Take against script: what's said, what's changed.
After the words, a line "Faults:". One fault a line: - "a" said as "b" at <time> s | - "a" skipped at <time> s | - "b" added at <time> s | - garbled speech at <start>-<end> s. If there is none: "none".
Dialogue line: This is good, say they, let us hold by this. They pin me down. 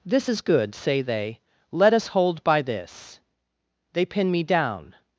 This is good, say they, let us hold by this. They pin me down.
Faults:
none